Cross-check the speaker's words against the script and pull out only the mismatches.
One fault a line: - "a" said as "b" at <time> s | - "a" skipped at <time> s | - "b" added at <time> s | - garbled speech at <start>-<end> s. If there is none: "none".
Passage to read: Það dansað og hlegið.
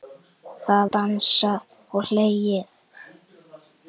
none